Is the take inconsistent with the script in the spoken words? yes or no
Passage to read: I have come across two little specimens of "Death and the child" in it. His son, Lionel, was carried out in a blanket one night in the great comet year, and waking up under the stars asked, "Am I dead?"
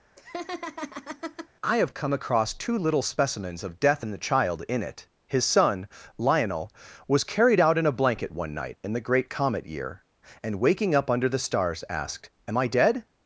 no